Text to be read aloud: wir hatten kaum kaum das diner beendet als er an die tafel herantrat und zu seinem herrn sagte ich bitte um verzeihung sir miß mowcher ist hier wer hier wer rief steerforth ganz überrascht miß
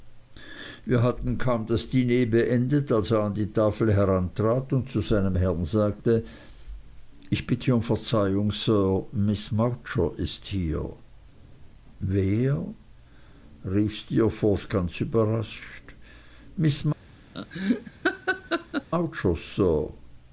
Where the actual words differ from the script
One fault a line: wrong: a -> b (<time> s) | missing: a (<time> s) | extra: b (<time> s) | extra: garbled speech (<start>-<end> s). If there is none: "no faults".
missing: kaum (1.7 s)
missing: hier wer (12.6 s)